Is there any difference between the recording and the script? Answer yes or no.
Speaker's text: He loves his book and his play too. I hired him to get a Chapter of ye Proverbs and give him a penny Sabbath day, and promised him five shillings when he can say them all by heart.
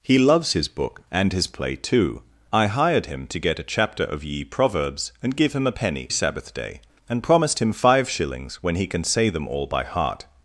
no